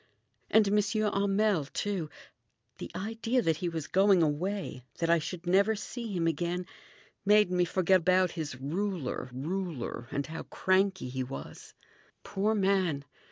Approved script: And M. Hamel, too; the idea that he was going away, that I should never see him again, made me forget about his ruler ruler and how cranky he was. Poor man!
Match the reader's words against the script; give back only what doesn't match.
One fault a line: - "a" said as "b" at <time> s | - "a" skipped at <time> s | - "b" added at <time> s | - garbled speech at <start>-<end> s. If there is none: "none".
none